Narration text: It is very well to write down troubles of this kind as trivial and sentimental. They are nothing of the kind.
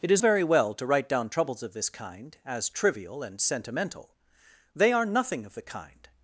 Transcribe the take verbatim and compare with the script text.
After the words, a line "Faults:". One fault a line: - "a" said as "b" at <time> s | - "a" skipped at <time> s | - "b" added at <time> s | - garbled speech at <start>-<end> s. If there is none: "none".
It is very well to write down troubles of this kind as trivial and sentimental. They are nothing of the kind.
Faults:
none